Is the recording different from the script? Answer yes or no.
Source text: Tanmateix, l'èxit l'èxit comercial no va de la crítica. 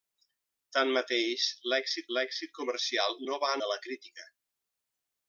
no